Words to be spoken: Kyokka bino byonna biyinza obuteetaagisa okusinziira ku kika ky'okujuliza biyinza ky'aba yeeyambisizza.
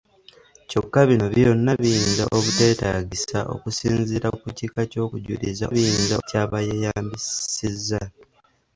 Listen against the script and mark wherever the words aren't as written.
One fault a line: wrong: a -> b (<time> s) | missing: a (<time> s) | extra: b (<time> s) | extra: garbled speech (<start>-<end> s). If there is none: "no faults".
no faults